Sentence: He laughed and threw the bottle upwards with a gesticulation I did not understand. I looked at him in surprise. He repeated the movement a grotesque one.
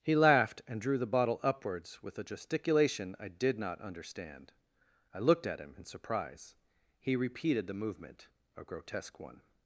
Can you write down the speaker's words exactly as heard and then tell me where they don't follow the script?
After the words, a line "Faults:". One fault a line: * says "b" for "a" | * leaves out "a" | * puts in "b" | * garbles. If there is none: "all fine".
He laughed and drew the bottle upwards with a gesticulation I did not understand. I looked at him in surprise. He repeated the movement a grotesque one.
Faults:
* says "drew" for "threw"